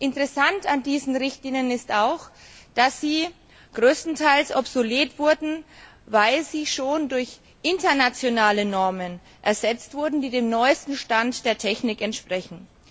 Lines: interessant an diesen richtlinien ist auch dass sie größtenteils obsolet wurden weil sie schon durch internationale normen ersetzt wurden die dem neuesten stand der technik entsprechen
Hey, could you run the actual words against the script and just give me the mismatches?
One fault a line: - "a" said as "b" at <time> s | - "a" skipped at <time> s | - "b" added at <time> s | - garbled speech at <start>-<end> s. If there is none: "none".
none